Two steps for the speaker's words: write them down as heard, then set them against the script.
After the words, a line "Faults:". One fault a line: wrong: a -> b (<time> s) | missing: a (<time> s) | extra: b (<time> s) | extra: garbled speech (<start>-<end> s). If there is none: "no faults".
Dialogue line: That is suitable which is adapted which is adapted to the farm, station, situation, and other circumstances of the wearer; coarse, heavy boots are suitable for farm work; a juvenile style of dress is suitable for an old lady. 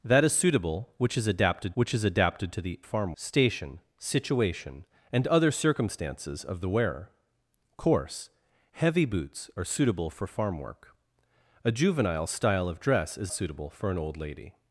That is suitable which is adapted which is adapted to the farm, station, situation, and other circumstances of the wearer; coarse, heavy boots are suitable for farm work; a juvenile style of dress is suitable for an old lady.
Faults:
no faults